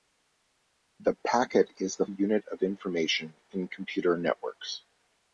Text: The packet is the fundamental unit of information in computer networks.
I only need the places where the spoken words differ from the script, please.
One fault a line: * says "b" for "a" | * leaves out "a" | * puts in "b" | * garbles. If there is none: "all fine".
* leaves out "fundamental"